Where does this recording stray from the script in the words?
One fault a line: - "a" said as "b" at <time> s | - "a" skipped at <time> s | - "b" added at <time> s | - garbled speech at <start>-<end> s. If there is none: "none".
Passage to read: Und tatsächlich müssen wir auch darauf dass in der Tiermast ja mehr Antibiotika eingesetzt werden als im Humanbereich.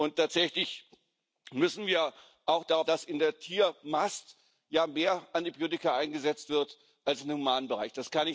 none